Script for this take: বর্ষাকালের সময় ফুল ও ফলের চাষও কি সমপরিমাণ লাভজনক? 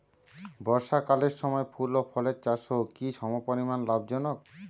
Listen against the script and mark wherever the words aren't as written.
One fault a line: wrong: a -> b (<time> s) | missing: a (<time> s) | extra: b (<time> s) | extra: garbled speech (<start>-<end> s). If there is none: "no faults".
no faults